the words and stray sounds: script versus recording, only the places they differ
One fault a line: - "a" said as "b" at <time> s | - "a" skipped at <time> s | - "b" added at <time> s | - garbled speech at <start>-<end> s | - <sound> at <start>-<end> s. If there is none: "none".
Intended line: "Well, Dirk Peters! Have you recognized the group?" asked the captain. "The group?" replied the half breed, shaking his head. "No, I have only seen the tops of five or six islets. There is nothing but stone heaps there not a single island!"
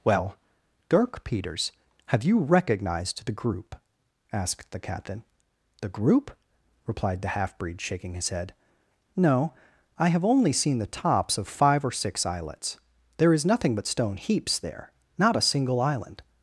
none